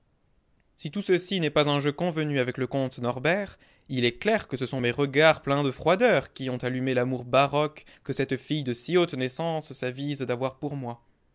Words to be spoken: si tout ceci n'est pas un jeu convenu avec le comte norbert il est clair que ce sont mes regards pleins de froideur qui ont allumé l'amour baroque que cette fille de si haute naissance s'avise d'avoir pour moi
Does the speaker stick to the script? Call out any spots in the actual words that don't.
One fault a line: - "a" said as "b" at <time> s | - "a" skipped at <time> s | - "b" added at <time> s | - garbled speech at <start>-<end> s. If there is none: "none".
none